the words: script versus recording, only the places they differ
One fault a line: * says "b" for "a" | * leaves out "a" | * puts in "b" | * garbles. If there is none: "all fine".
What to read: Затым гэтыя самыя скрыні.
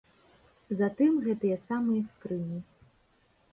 all fine